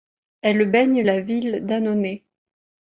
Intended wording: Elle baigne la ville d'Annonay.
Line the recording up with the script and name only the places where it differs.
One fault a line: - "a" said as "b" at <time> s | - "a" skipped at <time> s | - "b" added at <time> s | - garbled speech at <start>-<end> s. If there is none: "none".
none